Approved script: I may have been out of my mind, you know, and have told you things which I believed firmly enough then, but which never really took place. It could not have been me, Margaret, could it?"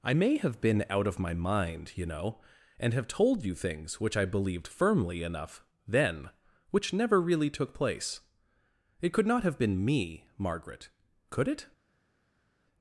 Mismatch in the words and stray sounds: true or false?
true